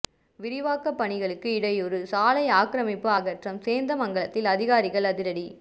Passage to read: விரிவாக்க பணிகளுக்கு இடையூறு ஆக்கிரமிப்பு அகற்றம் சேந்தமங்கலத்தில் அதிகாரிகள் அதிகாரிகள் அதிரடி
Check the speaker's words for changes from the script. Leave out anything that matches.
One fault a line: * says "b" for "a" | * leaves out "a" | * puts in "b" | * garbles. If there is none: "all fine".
* puts in "சாலை"
* leaves out "அதிகாரிகள்"